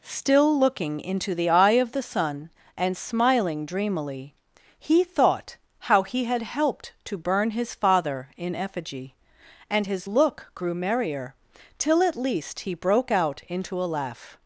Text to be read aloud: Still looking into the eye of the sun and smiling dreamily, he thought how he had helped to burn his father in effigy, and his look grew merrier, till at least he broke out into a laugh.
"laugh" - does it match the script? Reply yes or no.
yes